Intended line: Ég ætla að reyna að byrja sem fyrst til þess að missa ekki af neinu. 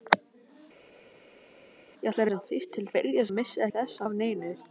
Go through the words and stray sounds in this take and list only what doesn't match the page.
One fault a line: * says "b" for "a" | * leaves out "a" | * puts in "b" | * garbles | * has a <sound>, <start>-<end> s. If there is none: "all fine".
* leaves out "reyna að byrja"
* says "byrja" for "þess"
* says "þess" for "ekki"